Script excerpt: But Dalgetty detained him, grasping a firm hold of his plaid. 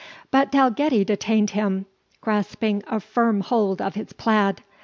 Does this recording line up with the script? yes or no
yes